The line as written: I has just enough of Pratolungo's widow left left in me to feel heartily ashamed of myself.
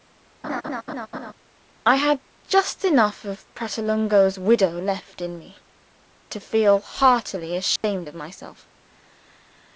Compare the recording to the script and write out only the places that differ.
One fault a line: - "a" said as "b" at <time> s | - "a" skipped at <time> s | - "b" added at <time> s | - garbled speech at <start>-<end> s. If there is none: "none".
- "has" said as "had" at 2.0 s
- "left" skipped at 5.2 s